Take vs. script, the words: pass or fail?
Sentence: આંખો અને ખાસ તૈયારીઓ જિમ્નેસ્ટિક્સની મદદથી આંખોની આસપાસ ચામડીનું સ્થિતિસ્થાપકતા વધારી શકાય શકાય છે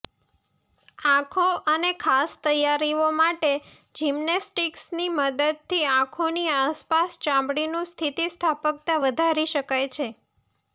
fail